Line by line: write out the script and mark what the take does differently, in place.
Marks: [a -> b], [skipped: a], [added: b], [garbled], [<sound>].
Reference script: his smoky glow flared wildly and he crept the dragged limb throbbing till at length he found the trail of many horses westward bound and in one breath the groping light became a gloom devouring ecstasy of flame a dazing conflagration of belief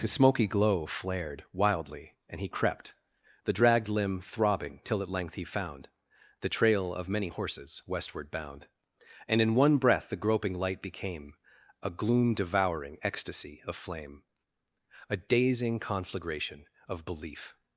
his smoky glow flared wildly and he crept the dragged limb throbbing till at length he found the trail of many horses westward bound and in one breath the groping light became a gloom devouring ecstasy of flame a dazing conflagration of belief